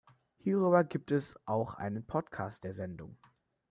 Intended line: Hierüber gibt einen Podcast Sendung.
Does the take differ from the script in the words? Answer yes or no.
yes